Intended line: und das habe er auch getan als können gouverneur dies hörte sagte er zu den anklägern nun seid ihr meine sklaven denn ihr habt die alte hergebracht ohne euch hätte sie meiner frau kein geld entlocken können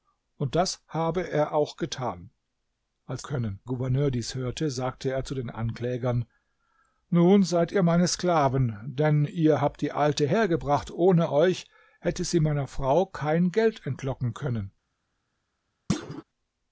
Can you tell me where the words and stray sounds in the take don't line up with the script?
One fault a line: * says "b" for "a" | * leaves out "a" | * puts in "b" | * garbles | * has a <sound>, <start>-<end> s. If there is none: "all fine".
* has a thud, 15.9-16.2 s